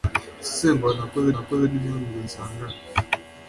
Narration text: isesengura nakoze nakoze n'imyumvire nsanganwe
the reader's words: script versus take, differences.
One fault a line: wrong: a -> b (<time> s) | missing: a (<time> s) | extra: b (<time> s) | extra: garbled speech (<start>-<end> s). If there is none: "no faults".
no faults